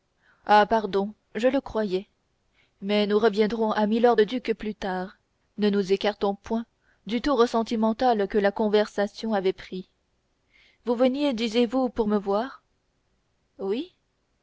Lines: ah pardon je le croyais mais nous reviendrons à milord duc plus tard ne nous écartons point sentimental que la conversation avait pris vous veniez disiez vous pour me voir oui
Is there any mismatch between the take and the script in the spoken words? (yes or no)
yes